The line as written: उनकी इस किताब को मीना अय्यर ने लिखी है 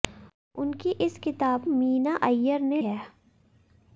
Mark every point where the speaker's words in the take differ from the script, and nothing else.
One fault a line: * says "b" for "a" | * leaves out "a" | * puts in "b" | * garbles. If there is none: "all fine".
* leaves out "को"
* leaves out "लिखी"